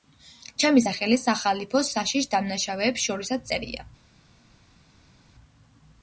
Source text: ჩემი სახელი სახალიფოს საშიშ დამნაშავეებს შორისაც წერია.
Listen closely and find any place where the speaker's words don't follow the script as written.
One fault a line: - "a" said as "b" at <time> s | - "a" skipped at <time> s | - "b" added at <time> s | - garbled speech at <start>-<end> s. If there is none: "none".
none